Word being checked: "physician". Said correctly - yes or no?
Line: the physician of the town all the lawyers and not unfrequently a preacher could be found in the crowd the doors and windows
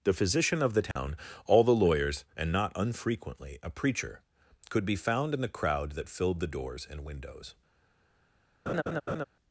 yes